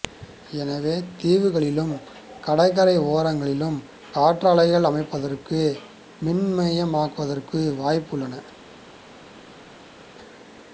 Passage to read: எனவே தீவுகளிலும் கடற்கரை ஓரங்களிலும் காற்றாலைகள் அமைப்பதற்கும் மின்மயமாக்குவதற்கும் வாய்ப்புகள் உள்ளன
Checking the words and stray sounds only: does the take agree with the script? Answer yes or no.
yes